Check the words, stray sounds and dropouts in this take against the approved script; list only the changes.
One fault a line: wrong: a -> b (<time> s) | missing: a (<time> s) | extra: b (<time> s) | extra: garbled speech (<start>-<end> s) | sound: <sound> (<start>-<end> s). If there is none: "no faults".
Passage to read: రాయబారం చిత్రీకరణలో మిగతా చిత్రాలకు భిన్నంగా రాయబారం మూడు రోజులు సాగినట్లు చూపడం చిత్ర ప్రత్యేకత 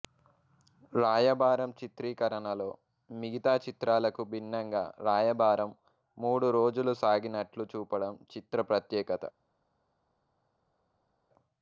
no faults